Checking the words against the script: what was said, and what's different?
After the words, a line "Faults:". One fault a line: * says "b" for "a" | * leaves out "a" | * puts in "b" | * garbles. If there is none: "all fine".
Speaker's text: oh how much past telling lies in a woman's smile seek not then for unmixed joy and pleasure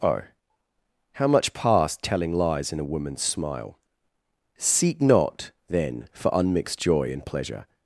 oh how much past telling lies in a woman's smile seek not then for unmixed joy and pleasure
Faults:
all fine